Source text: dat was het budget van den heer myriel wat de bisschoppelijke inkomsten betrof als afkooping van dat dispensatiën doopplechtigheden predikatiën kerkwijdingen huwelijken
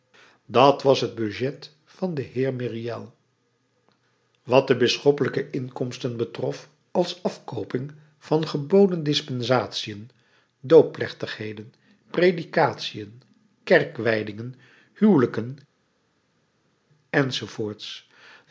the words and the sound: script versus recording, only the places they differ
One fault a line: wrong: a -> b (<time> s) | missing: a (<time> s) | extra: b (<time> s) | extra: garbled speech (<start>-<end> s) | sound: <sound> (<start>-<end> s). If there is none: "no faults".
wrong: dat -> geboden (8.5 s)